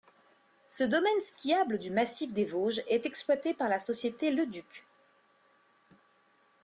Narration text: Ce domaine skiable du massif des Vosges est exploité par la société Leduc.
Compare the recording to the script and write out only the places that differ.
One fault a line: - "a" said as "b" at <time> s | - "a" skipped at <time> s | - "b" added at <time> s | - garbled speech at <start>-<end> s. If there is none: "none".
none